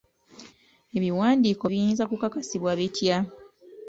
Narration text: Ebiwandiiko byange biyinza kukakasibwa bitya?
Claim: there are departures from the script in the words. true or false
true